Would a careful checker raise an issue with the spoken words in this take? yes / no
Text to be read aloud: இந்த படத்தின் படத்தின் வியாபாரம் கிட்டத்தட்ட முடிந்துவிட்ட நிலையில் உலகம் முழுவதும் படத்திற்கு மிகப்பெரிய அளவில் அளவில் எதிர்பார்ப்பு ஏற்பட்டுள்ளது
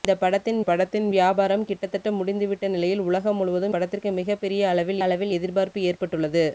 no